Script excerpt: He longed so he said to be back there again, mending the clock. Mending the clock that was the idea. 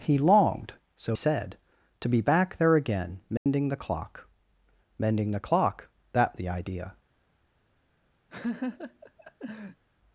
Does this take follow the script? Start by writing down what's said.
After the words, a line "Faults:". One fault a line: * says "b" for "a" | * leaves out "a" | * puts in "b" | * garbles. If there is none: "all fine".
He longed so said to be back there again, mending the clock. Mending the clock that the idea.
Faults:
* leaves out "he"
* leaves out "was"